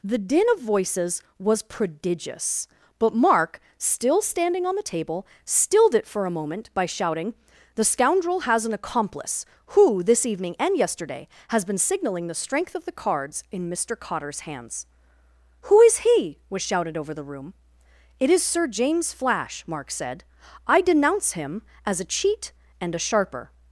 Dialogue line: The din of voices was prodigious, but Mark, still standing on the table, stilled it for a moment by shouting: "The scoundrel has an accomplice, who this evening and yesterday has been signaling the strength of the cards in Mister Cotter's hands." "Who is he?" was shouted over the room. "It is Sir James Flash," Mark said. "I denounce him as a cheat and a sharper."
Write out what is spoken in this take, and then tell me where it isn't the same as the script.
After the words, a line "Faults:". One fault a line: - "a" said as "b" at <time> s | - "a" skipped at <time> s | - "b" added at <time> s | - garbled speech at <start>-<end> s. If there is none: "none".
The din of voices was prodigious, but Mark, still standing on the table, stilled it for a moment by shouting: "The scoundrel has an accomplice, who this evening and yesterday has been signaling the strength of the cards in Mister Cotter's hands." "Who is he?" was shouted over the room. "It is Sir James Flash," Mark said. "I denounce him as a cheat and a sharper."
Faults:
none